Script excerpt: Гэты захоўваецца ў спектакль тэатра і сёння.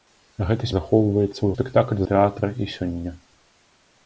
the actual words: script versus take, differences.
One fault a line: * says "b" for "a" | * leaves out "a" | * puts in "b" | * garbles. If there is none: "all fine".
all fine